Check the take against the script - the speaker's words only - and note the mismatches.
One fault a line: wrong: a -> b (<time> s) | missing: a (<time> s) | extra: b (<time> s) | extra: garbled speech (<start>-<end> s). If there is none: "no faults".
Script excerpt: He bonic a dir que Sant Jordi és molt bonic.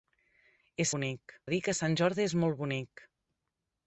no faults